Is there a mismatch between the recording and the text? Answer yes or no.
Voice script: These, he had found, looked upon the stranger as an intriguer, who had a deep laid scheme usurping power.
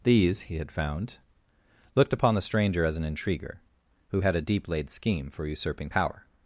yes